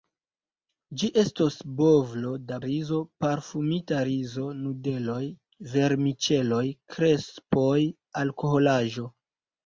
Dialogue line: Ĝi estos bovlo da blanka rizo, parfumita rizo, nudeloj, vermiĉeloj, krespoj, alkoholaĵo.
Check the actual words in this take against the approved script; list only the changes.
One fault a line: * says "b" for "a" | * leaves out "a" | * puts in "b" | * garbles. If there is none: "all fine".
* leaves out "blanka"